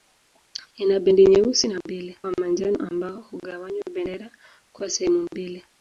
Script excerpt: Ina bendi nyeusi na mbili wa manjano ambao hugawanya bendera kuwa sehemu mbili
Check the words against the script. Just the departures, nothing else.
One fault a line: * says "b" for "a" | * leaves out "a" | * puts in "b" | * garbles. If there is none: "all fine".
all fine